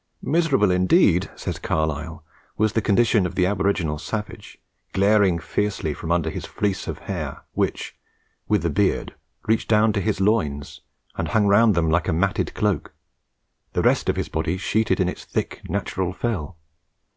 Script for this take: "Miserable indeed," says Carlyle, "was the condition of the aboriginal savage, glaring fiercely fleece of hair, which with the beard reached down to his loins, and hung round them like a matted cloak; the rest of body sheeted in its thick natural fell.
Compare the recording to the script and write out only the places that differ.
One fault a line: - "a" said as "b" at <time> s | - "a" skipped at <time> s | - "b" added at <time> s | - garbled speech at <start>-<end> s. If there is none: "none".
- "from under his" added at 5.9 s
- "his" added at 14.2 s